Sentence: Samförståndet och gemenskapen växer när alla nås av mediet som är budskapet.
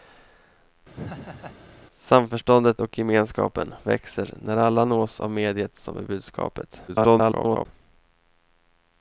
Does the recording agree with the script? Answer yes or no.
no